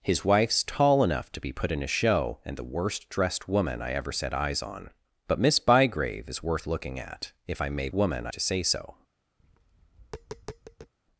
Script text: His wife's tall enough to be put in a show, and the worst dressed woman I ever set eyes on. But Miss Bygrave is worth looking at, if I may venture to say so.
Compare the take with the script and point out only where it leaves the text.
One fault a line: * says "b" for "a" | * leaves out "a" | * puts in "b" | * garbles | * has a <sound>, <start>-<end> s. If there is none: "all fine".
* says "woman" for "venture"
* has a tap, 9.4-10.9 s